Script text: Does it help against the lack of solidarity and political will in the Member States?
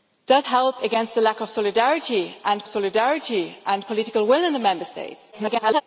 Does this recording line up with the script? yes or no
no